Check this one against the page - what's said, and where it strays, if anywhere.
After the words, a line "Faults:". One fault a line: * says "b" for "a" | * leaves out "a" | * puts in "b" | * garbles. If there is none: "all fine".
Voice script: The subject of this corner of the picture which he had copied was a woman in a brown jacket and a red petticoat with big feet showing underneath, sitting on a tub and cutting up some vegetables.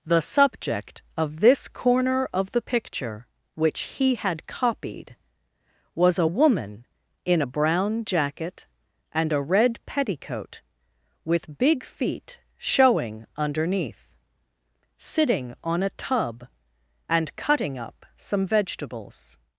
The subject of this corner of the picture which he had copied was a woman in a brown jacket and a red petticoat with big feet showing underneath, sitting on a tub and cutting up some vegetables.
Faults:
all fine